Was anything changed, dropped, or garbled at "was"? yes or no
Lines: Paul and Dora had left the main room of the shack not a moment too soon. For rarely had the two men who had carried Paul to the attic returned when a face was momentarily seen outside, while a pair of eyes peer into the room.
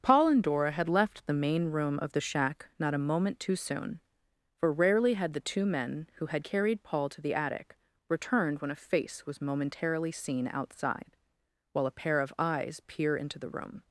no